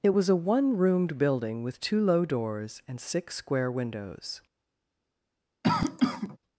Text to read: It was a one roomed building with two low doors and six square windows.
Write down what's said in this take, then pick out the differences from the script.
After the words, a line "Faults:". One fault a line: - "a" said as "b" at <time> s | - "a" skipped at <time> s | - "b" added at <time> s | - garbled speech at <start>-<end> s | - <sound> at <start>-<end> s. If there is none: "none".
It was a one roomed building with two low doors and six square windows.
Faults:
- cough at 5.6-6.4 s